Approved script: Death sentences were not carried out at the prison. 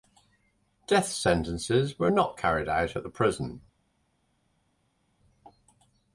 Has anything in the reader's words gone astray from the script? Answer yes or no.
no